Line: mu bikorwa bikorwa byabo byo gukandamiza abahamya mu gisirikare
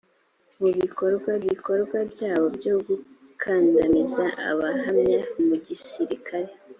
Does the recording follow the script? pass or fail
pass